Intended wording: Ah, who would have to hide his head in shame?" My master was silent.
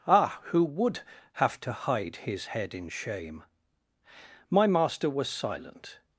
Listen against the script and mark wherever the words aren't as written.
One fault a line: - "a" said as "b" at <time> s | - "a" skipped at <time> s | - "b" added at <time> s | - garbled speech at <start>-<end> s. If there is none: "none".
none